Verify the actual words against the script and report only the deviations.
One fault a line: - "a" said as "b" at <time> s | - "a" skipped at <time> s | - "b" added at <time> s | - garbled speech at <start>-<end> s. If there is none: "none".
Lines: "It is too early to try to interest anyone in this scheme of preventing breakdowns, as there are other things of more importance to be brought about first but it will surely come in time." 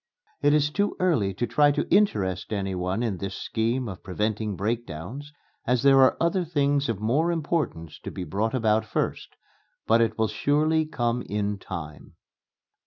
none